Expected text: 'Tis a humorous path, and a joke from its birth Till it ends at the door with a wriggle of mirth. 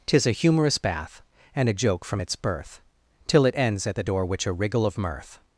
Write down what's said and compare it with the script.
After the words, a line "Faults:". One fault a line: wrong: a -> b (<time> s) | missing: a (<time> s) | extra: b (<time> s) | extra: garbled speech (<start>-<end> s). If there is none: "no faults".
'Tis a humorous bath, and a joke from its birth Till it ends at the door which a wriggle of mirth.
Faults:
wrong: path -> bath (0.8 s)
wrong: with -> which (4.3 s)